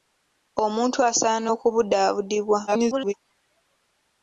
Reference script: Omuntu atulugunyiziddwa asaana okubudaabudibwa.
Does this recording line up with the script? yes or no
no